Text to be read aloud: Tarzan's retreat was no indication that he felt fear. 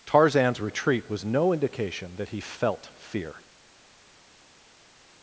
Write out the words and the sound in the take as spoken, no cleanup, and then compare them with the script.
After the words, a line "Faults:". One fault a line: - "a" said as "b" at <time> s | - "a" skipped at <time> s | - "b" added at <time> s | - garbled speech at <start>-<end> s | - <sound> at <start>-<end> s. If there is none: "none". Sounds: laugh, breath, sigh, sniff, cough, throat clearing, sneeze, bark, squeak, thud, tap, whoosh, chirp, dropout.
Tarzan's retreat was no indication that he felt fear.
Faults:
none